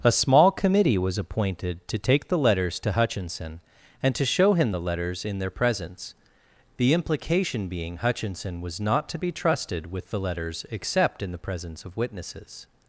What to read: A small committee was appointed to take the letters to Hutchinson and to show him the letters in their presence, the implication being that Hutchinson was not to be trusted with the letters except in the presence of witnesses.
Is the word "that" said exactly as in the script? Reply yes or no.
no